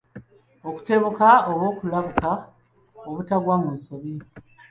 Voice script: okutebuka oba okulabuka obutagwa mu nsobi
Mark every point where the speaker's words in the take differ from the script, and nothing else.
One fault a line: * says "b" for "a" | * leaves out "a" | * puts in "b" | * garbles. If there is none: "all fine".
all fine